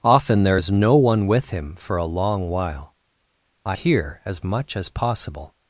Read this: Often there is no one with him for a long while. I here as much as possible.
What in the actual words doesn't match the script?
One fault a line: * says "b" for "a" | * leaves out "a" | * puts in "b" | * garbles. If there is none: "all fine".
all fine